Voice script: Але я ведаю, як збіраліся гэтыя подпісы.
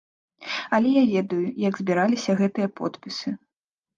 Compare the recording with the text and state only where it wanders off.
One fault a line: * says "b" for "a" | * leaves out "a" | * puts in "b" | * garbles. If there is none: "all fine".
all fine